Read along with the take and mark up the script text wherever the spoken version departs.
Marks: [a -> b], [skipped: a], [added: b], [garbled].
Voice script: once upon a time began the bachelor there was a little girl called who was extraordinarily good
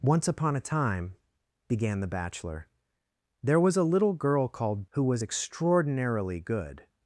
once upon a time began the bachelor there was a little girl called who was extraordinarily good